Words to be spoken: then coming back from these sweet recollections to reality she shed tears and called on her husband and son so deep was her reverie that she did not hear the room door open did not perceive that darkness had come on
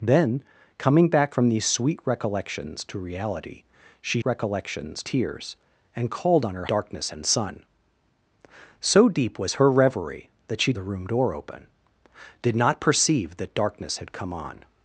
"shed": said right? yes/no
no